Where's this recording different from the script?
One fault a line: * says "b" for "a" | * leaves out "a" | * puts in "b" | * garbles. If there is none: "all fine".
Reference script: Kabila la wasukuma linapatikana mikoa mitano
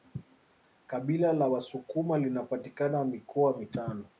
all fine